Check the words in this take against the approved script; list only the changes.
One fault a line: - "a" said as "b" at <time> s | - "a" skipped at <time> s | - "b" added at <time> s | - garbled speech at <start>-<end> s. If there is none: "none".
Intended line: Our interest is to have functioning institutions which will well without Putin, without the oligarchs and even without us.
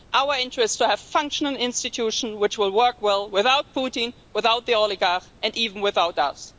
- "work" added at 2.7 s